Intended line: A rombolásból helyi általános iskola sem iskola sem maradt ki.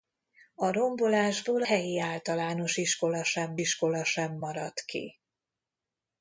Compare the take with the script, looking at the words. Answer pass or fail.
pass